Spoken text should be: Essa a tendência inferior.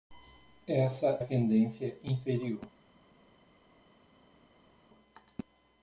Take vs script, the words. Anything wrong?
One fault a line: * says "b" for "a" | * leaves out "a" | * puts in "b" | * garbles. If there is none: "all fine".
all fine